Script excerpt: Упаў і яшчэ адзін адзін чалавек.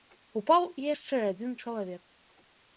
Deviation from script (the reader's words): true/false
true